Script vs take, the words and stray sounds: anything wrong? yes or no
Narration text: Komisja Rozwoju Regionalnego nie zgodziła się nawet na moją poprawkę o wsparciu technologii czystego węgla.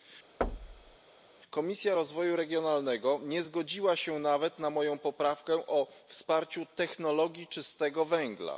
yes